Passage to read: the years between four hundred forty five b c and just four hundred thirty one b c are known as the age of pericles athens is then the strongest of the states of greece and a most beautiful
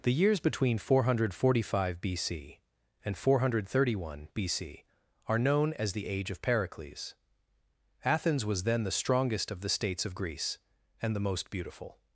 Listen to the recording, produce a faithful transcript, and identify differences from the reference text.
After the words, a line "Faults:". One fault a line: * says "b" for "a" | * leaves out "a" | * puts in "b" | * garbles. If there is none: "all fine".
the years between four hundred forty five b c and four hundred thirty one b c are known as the age of pericles athens was then the strongest of the states of greece and the most beautiful
Faults:
* leaves out "just"
* says "was" for "is"
* says "the" for "a"